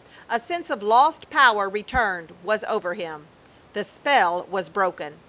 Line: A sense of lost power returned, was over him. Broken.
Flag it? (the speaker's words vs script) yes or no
yes